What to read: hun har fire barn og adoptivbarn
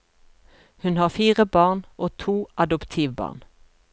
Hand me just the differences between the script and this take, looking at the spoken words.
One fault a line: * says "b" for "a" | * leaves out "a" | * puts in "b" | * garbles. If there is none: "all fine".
* puts in "to"